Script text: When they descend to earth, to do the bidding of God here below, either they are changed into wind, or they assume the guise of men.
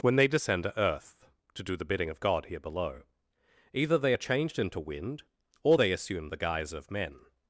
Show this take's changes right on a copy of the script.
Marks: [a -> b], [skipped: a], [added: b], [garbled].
When they descend to earth, to do the bidding of God here below, either they are changed into wind, or they assume the guise of men.